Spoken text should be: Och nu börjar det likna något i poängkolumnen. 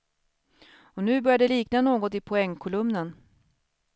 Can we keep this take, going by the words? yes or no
yes